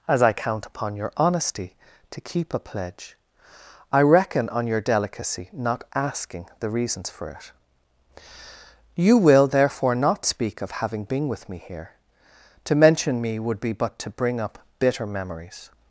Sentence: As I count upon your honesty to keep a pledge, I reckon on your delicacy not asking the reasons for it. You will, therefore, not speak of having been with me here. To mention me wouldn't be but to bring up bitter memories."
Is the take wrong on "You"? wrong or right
right